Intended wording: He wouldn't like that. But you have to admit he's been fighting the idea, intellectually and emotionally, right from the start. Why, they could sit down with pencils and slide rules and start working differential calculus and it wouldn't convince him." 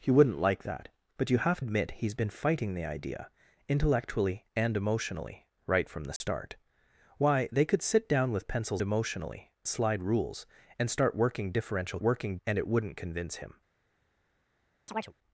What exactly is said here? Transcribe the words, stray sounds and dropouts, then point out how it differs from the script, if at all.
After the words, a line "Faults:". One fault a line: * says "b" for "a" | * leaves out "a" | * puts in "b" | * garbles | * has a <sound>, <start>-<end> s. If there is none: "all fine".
He wouldn't like that. But you have admit he's been fighting the idea, intellectually and emotionally, right from the start. Why, they could sit down with pencils emotionally slide rules and start working differential working and it wouldn't convince him."
Faults:
* leaves out "to"
* has a dropout, 6.2-6.2 s
* says "emotionally" for "and"
* says "working" for "calculus"
* has a chirp, 14.9-15.1 s